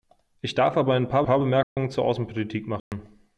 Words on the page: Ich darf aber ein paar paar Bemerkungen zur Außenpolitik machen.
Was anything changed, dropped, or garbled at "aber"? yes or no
no